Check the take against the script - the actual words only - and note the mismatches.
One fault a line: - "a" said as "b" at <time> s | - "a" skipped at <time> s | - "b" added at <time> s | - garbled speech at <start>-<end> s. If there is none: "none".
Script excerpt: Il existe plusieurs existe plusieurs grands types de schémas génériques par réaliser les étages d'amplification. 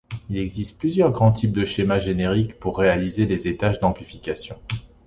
- "existe plusieurs" skipped at 1.1 s
- "par" said as "pour" at 2.6 s